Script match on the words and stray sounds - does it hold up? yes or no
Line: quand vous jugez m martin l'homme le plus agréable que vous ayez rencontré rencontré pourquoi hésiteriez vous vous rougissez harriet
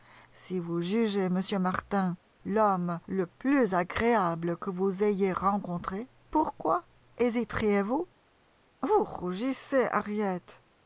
no